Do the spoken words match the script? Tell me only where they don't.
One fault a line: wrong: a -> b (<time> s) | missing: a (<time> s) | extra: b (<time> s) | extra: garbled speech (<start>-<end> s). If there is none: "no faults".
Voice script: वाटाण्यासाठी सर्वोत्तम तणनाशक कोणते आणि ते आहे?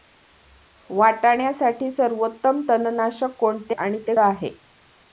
no faults